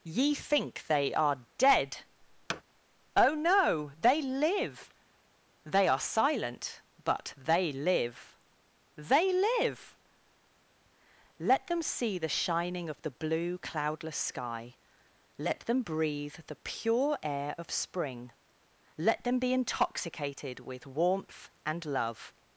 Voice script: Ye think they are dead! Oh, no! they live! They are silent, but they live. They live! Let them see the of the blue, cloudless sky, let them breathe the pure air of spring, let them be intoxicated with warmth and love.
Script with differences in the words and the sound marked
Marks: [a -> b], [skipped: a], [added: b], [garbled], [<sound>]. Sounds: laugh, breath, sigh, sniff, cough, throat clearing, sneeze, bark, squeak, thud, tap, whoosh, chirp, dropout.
Ye think they are dead! [thud] Oh, no! they live! They are silent, but they live. They live! Let them see the [added: shining] of the blue, cloudless sky, let them breathe the pure air of spring, let them be intoxicated with warmth and love.